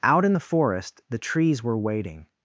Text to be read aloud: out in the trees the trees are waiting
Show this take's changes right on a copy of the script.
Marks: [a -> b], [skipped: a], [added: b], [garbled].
out in the [trees -> forest] the trees [are -> were] waiting